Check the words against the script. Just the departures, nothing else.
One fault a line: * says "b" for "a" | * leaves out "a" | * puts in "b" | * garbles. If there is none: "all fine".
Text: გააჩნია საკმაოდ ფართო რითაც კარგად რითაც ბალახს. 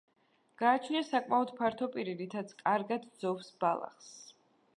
* puts in "პირი"
* says "ძოვს" for "რითაც"